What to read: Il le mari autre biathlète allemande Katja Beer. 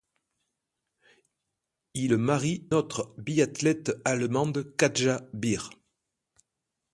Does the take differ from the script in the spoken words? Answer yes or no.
no